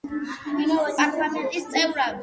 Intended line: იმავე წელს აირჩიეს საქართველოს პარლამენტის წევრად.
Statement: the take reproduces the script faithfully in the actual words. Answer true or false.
false